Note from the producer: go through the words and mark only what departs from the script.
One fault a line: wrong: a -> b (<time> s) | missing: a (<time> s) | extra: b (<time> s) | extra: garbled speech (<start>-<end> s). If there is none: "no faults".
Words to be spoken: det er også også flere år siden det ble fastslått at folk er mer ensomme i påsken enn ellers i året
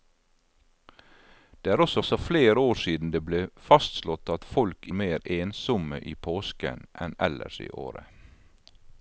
no faults